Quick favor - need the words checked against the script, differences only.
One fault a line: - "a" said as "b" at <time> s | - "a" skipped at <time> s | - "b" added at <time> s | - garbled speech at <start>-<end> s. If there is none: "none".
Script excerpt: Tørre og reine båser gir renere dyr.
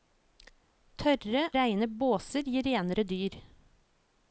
- "og" skipped at 1.4 s